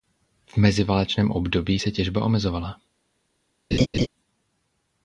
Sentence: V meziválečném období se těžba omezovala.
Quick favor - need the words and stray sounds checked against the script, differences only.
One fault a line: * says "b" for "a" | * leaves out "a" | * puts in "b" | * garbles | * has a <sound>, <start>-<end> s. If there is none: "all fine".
* has a laugh, 3.7-4.1 s